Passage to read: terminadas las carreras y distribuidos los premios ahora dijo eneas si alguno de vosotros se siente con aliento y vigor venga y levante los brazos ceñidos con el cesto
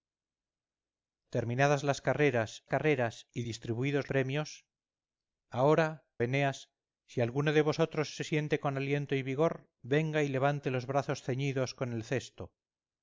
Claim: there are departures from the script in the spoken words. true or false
true